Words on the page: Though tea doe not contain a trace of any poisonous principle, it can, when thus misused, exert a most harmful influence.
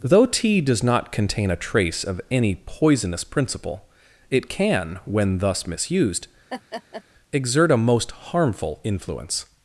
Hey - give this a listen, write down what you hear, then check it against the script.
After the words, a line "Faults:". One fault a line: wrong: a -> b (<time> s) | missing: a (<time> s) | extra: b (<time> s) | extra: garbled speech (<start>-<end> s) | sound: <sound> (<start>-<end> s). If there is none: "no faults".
Though tea does not contain a trace of any poisonous principle, it can, when thus misused, exert a most harmful influence.
Faults:
wrong: doe -> does (0.6 s)
sound: laugh (6.5-7.0 s)